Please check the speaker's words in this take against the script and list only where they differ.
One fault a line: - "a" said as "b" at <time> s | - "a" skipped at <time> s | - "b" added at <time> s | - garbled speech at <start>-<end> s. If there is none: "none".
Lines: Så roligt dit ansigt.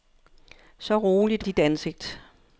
none